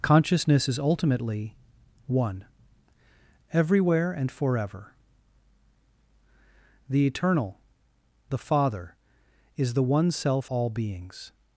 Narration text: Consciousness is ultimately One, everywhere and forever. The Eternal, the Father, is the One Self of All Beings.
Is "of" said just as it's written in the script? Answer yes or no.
no